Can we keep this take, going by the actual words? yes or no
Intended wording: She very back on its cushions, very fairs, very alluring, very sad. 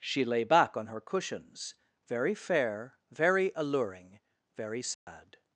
no